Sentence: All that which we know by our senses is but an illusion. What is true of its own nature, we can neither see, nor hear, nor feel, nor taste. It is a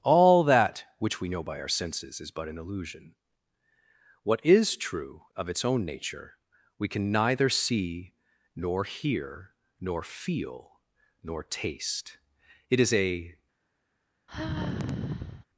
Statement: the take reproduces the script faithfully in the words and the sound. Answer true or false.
false